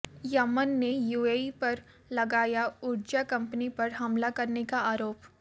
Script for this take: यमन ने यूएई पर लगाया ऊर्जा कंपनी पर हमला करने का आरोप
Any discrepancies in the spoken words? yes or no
no